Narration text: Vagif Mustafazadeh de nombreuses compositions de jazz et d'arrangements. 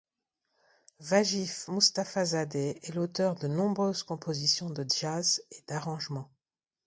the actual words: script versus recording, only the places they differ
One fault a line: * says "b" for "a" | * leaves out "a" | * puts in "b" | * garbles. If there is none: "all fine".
* puts in "est l'auteur"